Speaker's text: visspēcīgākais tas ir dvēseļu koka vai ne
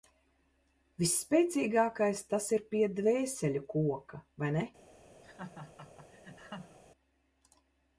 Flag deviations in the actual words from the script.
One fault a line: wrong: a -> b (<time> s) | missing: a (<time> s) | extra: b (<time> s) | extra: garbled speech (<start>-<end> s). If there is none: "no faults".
extra: pie (2.7 s)